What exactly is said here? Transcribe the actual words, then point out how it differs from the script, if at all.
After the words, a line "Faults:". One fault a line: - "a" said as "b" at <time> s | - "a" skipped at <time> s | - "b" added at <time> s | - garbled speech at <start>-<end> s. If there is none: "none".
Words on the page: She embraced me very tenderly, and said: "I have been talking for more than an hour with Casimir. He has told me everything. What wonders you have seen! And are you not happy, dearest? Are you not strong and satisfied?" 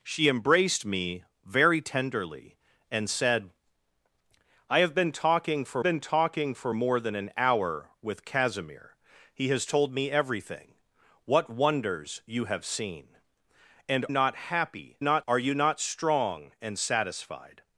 She embraced me very tenderly, and said: "I have been talking for been talking for more than an hour with Casimir. He has told me everything. What wonders you have seen! And not happy, not? Are you not strong and satisfied?"
Faults:
- "been talking for" added at 5.8 s
- "are you" skipped at 14.1 s
- "dearest" said as "not" at 15.0 s